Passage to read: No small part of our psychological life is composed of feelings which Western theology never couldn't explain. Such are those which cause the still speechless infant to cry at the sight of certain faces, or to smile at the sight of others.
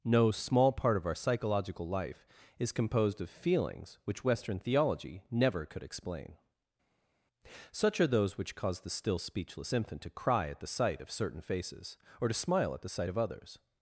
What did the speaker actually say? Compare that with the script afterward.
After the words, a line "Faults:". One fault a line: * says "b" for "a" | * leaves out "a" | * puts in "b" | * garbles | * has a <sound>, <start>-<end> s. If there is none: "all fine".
No small part of our psychological life is composed of feelings which Western theology never could explain. Such are those which cause the still speechless infant to cry at the sight of certain faces, or to smile at the sight of others.
Faults:
* says "could" for "couldn't"